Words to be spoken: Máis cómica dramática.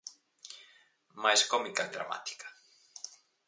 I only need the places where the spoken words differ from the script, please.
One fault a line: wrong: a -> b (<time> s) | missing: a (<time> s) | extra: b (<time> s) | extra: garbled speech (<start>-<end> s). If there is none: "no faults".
no faults